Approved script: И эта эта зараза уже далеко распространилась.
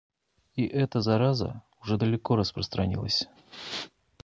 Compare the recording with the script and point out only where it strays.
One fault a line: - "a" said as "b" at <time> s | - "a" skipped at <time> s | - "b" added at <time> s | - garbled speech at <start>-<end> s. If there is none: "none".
- "эта" skipped at 1.0 s